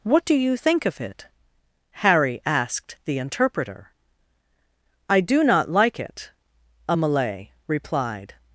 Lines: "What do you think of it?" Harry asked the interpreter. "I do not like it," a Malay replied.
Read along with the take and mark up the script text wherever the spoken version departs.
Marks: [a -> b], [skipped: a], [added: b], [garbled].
"What do you think of it?" Harry asked the interpreter. "I do not like it," a Malay replied.